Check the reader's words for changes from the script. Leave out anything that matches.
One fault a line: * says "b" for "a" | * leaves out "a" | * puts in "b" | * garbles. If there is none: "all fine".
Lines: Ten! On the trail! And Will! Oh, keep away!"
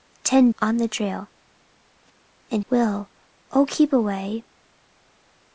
all fine